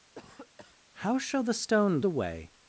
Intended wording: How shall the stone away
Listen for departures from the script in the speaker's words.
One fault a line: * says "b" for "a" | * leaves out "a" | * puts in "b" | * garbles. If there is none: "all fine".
all fine